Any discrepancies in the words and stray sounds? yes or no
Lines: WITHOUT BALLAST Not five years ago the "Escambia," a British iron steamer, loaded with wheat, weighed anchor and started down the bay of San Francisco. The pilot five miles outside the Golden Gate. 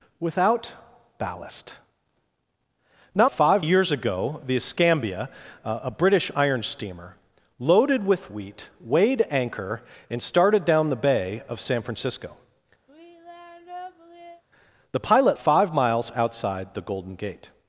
yes